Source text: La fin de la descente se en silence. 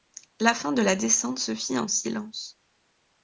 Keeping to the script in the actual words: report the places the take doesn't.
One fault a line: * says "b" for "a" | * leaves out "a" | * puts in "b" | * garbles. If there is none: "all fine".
* puts in "fit"